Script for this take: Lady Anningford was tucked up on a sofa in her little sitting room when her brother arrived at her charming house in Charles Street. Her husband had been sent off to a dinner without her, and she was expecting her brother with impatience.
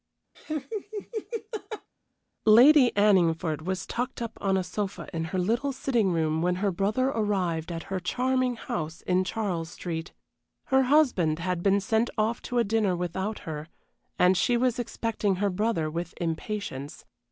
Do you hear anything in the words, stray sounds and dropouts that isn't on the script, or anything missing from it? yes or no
yes